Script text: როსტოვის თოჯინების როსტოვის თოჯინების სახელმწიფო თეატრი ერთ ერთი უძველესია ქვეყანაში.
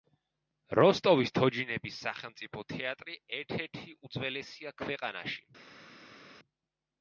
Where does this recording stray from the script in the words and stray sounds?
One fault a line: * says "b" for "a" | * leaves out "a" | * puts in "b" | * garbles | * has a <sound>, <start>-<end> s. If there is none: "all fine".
* leaves out "როსტოვის თოჯინების"